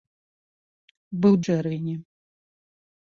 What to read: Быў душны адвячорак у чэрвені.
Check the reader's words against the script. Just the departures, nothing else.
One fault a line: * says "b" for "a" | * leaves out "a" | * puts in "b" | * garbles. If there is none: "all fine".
* leaves out "душны адвячорак у"